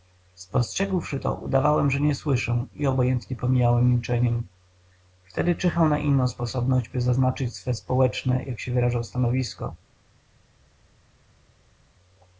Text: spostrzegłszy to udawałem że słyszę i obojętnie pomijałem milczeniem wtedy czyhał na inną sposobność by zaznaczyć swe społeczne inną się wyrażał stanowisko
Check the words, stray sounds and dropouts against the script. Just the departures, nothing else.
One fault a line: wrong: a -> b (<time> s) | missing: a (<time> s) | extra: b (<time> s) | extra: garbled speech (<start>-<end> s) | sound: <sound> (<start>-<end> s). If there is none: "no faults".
extra: nie (2.0 s)
wrong: inną -> jak (8.4 s)